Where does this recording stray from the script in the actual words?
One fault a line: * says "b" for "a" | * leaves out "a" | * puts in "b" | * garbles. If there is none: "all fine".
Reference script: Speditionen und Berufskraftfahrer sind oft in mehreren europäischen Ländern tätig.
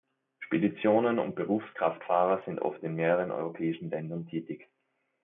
all fine